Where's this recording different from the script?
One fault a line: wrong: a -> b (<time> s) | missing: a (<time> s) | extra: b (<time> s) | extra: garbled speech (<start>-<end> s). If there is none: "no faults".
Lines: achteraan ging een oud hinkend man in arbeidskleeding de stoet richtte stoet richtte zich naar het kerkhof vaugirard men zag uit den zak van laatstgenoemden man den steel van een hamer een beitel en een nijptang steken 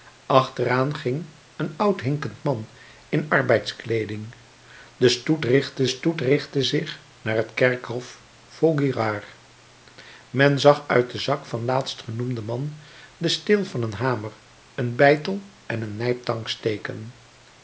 no faults